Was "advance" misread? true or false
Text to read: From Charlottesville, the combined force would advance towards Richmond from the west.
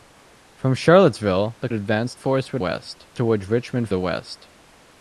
true